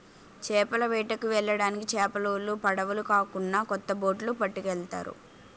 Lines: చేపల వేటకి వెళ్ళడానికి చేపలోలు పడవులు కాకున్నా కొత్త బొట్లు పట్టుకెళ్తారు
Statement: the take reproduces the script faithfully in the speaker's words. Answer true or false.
true